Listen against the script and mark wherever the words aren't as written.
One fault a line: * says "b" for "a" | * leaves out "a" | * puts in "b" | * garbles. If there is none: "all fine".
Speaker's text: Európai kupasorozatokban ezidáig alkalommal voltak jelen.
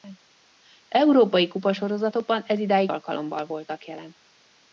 all fine